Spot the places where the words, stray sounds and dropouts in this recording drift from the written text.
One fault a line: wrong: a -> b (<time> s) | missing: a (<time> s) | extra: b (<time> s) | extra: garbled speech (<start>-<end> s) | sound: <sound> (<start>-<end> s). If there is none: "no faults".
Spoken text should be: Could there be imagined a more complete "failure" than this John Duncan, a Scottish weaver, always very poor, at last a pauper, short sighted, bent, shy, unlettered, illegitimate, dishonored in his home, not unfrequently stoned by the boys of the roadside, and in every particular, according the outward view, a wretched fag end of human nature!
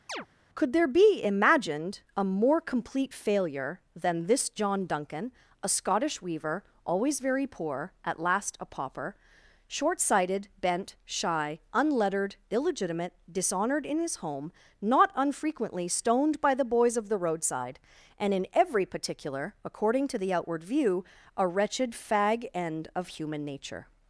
sound: chirp (0.1-0.3 s)
extra: to (20.1 s)